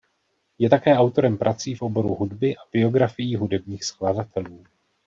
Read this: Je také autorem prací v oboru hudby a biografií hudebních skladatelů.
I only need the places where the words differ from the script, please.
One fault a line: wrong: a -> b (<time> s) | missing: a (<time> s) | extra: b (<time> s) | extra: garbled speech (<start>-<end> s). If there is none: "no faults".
no faults